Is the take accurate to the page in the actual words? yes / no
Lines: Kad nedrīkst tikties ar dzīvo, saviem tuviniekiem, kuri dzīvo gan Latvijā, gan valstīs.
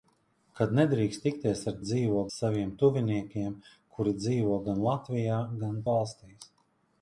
yes